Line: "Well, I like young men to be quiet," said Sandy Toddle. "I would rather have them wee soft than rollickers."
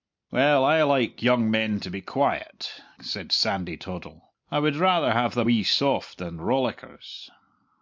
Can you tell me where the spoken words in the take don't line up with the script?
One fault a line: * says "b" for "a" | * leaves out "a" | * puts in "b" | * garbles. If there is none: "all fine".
all fine